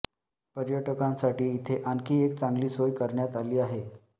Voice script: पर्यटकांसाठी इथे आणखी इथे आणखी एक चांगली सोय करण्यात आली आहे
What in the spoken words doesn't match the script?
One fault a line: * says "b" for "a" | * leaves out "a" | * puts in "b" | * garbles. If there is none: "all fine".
* leaves out "इथे आणखी"